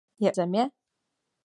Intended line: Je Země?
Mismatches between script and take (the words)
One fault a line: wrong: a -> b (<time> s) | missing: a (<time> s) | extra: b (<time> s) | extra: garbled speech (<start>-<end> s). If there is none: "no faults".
no faults